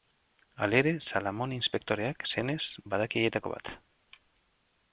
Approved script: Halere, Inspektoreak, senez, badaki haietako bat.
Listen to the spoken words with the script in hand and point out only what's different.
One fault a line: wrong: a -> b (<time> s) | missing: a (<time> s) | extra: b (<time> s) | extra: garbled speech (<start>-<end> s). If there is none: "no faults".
extra: Salamone (1.1 s)